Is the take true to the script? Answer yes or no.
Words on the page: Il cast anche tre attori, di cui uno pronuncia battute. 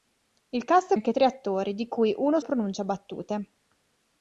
yes